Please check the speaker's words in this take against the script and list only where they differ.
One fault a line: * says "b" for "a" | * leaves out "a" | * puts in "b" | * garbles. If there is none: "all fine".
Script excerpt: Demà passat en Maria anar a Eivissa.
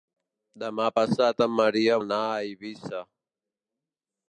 all fine